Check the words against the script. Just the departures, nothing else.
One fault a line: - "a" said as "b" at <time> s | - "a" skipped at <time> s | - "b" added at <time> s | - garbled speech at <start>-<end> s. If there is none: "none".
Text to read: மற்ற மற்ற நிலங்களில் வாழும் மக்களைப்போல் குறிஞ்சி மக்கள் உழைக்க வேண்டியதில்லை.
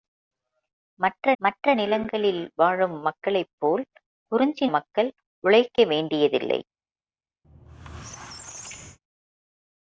none